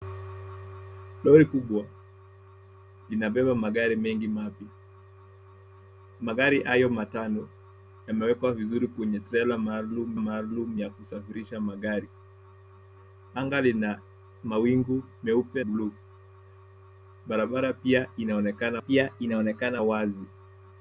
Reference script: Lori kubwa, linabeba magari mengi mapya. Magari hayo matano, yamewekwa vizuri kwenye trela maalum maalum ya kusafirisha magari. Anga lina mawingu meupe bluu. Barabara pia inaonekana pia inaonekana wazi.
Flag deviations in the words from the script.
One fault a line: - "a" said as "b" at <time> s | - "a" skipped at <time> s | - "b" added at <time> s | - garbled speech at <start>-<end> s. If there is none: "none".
none